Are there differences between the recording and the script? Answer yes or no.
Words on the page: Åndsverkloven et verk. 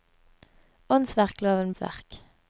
no